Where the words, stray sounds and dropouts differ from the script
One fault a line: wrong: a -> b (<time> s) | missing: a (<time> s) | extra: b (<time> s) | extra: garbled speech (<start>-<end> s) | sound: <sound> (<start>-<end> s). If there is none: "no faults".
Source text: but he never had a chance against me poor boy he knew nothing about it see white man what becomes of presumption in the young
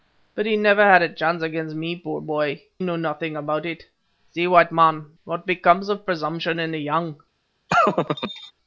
missing: he (2.6 s)
sound: laugh (7.7-8.5 s)